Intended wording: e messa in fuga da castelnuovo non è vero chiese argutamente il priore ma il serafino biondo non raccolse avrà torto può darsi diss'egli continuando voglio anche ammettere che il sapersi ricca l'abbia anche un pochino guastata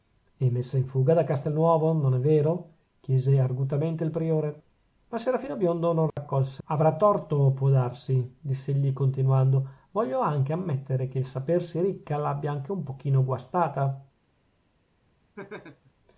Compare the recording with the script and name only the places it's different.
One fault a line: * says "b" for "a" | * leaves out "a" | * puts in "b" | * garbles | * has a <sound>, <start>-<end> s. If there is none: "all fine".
* has a dropout, 6.1-6.2 s
* has a laugh, 15.4-15.9 s